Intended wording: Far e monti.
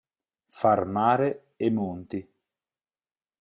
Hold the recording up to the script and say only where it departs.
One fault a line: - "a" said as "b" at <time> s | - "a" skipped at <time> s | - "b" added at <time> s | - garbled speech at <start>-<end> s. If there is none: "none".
- "mare" added at 0.8 s